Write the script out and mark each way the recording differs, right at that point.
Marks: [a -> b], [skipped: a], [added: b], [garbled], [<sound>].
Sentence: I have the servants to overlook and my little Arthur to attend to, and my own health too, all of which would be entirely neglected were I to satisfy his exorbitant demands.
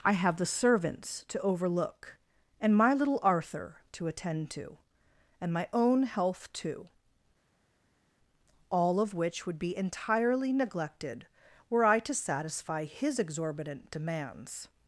I have the servants to overlook and my little Arthur to attend to, and my own health too, all of which would be entirely neglected were I to satisfy his exorbitant demands.